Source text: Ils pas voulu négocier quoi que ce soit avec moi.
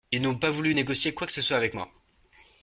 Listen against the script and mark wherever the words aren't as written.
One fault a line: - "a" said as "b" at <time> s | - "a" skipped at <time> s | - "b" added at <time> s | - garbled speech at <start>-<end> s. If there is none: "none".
- "n'ont" added at 0.2 s